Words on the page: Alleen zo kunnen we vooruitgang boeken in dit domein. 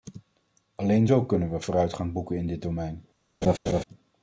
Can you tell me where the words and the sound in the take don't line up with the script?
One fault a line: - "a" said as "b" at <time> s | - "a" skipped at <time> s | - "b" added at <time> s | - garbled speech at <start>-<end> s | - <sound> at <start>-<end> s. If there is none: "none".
- laugh at 3.4-3.8 s